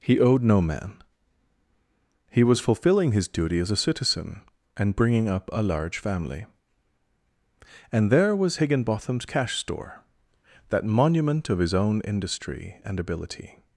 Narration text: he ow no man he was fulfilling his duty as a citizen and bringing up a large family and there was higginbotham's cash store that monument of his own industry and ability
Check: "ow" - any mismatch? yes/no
yes